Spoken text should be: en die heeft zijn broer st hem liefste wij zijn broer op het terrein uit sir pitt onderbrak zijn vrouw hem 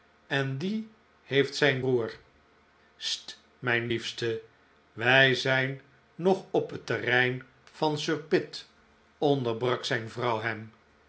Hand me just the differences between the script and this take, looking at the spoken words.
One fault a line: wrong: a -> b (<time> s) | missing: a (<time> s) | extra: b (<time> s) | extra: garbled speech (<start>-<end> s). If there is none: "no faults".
wrong: hem -> mijn (3.6 s)
wrong: broer -> nog (6.1 s)
wrong: uit -> van (7.7 s)